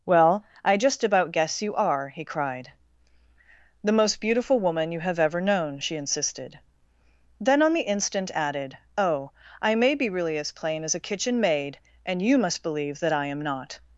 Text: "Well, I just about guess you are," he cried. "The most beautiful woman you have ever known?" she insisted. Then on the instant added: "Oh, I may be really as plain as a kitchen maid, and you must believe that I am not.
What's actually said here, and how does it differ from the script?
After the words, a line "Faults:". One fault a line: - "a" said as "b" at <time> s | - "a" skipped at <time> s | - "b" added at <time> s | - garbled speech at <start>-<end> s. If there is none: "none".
"Well, I just about guess you are," he cried. "The most beautiful woman you have ever known?" she insisted. Then on the instant added: "Oh, I may be really as plain as a kitchen maid, and you must believe that I am not.
Faults:
none